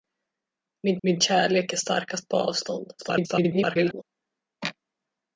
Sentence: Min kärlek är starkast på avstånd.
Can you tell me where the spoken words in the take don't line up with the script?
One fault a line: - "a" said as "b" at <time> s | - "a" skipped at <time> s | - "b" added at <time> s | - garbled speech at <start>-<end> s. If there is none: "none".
- "min" added at 1.0 s
- garbled speech at 3.0-4.0 s